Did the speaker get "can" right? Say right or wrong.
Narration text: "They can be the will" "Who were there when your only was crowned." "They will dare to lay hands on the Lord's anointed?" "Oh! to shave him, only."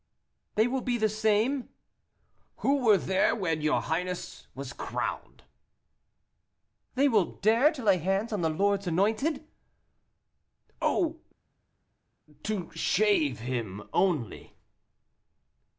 wrong